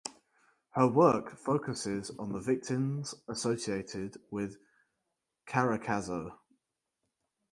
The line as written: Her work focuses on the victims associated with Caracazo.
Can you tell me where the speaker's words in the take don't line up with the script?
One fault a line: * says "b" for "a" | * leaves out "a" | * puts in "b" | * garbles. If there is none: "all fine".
all fine